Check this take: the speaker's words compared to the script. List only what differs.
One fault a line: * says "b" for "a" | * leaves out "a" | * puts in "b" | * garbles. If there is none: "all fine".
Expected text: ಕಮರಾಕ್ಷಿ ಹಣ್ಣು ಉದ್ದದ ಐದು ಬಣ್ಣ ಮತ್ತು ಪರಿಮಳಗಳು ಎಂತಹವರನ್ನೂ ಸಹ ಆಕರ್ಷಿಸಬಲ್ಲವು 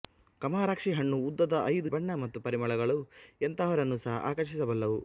all fine